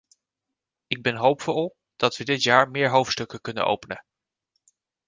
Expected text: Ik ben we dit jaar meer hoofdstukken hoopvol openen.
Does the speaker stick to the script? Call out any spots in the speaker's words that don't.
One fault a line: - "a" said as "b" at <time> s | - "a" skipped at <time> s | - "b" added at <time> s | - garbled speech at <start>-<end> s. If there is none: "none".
- "hoopvol dat" added at 1.1 s
- "hoopvol" said as "kunnen" at 3.4 s